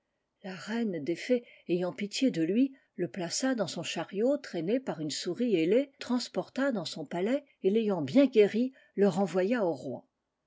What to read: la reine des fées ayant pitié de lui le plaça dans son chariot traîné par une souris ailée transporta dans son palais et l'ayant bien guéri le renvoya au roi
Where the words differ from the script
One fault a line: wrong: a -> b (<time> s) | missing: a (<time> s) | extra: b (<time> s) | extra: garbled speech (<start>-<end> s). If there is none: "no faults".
no faults